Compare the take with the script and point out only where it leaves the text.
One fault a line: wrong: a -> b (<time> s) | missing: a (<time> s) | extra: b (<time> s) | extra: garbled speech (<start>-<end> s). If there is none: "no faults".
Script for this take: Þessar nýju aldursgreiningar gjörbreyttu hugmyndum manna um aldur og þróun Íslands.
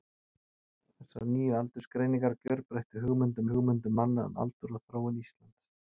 extra: hugmyndum (3.5 s)